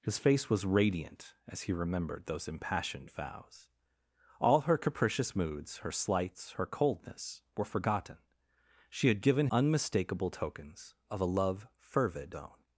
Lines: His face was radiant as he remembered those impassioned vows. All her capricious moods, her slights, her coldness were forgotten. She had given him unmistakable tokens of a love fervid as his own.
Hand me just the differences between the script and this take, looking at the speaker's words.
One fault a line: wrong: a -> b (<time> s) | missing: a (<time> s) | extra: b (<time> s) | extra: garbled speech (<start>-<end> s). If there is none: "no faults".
missing: him (9.5 s)
missing: as his (12.4 s)